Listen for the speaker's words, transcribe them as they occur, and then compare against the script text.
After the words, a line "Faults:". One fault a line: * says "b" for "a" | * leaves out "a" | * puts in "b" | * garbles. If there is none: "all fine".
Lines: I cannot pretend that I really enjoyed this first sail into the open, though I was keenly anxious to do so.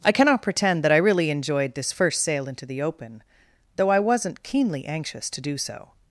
I cannot pretend that I really enjoyed this first sail into the open, though I wasn't keenly anxious to do so.
Faults:
* says "wasn't" for "was"